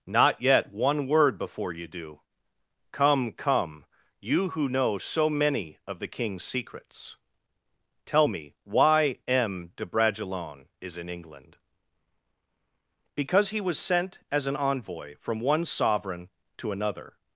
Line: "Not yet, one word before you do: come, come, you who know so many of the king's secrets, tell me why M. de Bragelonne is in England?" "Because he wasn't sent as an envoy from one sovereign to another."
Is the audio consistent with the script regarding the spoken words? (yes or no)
no